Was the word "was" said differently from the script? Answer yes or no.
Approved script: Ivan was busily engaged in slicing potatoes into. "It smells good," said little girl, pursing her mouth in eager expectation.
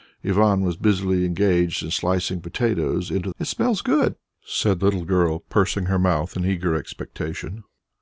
no